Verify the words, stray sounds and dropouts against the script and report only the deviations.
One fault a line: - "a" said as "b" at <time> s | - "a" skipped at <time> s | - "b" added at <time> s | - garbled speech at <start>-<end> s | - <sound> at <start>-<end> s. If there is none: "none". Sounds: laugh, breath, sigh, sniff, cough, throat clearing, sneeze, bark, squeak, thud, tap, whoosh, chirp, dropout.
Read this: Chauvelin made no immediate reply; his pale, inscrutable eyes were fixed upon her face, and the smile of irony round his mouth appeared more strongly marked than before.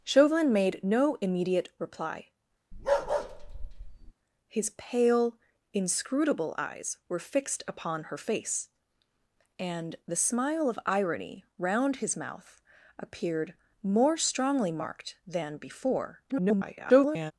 - bark at 2.7-4.1 s
- garbled speech at 16.3-17.3 s